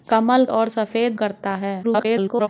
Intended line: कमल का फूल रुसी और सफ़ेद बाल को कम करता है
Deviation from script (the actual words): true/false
true